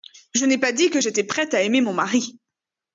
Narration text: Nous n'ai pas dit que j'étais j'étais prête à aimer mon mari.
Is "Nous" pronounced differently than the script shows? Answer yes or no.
yes